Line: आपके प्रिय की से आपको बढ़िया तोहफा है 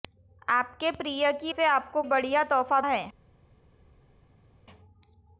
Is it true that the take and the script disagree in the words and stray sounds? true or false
false